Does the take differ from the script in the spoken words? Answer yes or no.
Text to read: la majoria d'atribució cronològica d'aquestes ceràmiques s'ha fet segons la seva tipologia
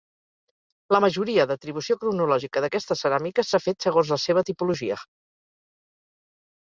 no